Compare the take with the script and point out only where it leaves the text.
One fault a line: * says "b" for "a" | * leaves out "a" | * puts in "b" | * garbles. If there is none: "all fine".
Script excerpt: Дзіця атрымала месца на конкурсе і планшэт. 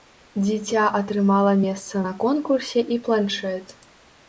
all fine